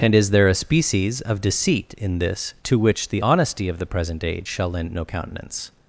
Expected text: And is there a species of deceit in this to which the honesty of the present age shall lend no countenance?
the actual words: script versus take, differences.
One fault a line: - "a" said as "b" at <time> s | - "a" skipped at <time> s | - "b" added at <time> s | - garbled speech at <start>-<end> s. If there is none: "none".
none